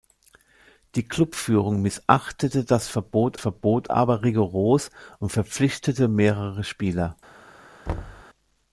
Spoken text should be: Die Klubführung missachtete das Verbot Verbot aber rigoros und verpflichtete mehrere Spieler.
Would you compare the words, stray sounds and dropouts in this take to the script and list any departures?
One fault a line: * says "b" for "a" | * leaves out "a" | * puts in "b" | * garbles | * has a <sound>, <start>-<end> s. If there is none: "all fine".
* has a thud, 7.9-8.2 s